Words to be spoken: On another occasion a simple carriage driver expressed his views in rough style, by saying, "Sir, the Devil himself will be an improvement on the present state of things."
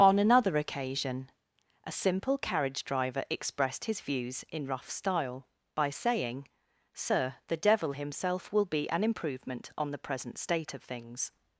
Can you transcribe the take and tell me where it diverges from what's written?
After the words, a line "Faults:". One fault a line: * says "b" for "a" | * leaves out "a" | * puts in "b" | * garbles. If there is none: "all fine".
On another occasion a simple carriage driver expressed his views in rough style, by saying, "Sir, the Devil himself will be an improvement on the present state of things."
Faults:
all fine